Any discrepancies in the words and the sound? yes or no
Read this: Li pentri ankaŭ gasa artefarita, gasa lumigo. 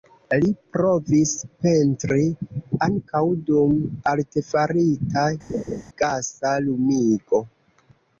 yes